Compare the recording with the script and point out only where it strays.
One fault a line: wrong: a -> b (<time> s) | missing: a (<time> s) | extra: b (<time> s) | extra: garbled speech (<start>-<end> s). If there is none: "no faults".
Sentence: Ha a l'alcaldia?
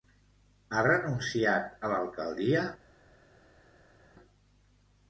extra: renunciat (0.9 s)